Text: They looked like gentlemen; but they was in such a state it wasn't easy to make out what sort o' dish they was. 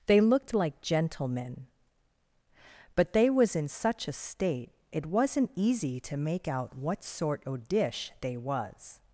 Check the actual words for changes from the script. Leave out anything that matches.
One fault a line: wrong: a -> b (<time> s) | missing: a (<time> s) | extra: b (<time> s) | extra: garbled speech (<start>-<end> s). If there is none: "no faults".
no faults